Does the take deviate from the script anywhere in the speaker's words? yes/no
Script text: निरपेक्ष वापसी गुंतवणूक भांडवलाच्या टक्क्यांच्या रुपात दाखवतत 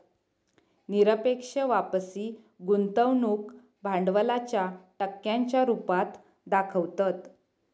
no